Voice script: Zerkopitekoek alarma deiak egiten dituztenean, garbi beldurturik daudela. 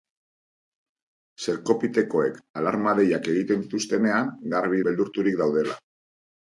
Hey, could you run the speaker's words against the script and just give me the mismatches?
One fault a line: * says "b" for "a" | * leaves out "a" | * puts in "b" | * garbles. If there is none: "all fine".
all fine